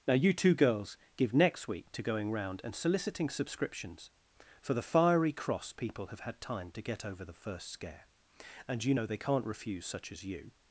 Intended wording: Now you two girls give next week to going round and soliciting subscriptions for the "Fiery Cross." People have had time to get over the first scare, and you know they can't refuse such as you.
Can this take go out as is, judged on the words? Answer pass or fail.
pass